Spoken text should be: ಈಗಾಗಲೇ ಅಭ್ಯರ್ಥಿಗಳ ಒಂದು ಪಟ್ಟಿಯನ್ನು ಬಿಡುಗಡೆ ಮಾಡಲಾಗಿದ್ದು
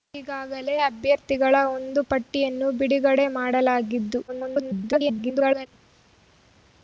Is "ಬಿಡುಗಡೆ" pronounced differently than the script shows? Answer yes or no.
no